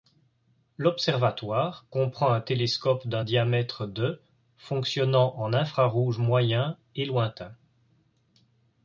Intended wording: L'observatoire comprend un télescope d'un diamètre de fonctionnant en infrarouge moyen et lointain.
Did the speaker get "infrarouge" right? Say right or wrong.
right